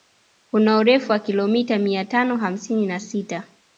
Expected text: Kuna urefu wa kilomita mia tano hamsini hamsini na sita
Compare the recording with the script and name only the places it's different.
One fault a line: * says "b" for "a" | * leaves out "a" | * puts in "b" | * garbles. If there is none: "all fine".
* leaves out "hamsini"